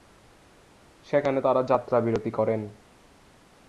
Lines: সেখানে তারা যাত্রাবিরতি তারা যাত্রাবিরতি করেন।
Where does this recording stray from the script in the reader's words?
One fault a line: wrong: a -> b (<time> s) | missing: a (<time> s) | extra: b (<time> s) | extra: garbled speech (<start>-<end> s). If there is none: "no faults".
missing: তারা যাত্রাবিরতি (2.3 s)